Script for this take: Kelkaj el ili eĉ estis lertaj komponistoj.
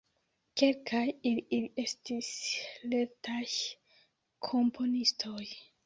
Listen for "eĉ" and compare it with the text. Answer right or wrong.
wrong